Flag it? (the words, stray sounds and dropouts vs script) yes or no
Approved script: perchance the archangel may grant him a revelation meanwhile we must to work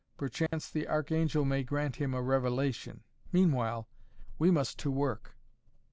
yes